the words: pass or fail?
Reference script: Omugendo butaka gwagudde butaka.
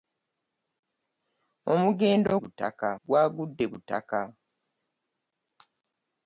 pass